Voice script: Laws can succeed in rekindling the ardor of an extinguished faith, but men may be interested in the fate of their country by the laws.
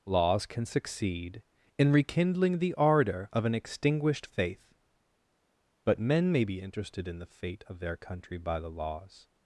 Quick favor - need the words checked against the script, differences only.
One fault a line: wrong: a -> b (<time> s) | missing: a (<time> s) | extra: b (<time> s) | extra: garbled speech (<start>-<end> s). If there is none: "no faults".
no faults